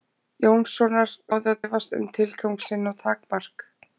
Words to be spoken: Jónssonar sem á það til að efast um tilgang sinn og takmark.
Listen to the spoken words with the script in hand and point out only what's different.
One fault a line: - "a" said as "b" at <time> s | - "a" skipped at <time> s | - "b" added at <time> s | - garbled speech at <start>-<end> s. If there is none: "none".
- "sem" skipped at 1.1 s
- "til að" skipped at 1.6 s